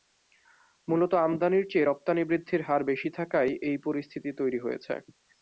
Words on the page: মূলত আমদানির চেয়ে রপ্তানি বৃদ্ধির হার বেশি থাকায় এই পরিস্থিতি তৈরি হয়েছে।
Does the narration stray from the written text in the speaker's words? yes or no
no